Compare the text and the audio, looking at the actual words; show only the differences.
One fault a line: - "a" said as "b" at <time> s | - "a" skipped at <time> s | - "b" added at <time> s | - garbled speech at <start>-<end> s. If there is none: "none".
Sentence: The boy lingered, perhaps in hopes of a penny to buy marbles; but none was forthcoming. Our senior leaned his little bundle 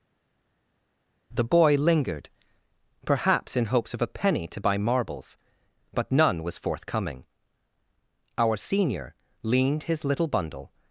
none